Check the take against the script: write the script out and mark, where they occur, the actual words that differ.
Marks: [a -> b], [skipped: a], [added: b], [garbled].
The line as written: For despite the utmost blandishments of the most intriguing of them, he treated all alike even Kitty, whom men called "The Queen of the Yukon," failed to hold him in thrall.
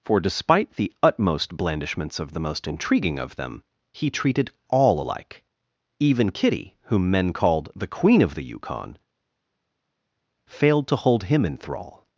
For despite the utmost blandishments of the most intriguing of them, he treated all alike even Kitty, whom men called "The Queen of the Yukon," failed to hold him in thrall.